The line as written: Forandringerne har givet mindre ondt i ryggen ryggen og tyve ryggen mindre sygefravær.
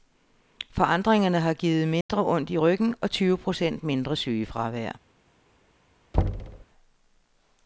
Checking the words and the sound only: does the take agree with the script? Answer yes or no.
no